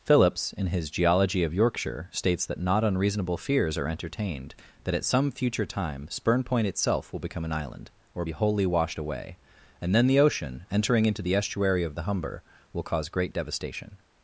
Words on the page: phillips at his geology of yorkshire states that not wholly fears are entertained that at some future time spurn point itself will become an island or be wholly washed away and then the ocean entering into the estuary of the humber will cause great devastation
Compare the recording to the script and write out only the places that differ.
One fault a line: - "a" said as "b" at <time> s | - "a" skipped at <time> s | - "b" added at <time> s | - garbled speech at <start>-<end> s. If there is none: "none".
- "at" said as "in" at 0.5 s
- "wholly" said as "unreasonable" at 2.8 s